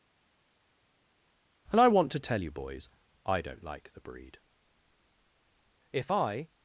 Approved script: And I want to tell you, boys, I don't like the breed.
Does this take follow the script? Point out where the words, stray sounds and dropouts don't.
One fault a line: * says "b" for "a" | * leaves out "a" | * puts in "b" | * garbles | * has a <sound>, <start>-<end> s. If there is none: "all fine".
* puts in "If I"